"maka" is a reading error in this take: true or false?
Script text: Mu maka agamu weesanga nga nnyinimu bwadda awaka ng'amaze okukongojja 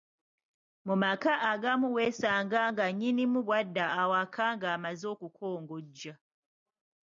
false